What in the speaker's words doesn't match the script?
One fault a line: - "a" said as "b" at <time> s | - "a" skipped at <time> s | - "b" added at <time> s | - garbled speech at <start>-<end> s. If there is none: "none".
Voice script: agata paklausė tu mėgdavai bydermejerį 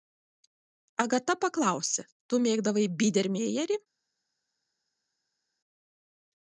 none